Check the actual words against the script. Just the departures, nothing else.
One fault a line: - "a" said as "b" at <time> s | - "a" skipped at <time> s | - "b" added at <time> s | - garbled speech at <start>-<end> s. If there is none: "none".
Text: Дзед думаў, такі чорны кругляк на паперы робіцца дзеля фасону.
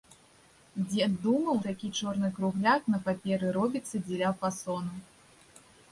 none